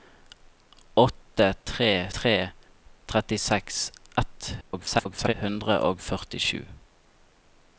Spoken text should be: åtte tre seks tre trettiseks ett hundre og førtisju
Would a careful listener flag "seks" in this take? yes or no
yes